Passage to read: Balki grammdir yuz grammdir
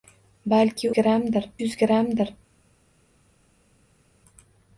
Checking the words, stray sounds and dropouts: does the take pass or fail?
pass